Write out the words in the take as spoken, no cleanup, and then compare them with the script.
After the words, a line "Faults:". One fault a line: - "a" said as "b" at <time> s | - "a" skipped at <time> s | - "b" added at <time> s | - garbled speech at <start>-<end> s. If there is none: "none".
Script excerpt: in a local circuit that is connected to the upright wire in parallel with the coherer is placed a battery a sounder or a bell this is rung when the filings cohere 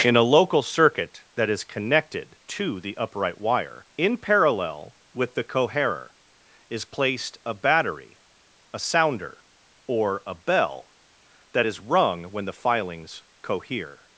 in a local circuit that is connected to the upright wire in parallel with the coherer is placed a battery a sounder or a bell that is rung when the filings cohere
Faults:
- "this" said as "that" at 11.5 s